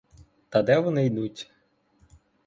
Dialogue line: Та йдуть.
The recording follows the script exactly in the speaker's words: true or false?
false